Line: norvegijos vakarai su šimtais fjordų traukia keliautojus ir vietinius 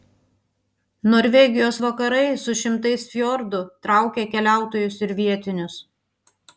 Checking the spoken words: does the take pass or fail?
pass